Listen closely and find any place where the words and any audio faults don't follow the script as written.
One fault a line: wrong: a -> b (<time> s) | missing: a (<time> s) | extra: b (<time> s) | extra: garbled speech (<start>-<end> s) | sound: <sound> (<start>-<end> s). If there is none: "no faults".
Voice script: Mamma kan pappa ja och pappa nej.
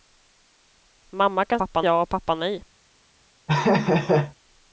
sound: laugh (3.5-4.3 s)